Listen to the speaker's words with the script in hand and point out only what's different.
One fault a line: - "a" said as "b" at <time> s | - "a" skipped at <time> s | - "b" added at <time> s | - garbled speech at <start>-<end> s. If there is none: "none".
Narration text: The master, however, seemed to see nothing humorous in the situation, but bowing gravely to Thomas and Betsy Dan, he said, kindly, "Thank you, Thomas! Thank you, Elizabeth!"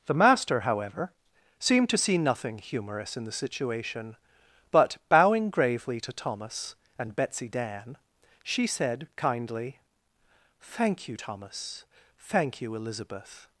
- "he" said as "she" at 8.4 s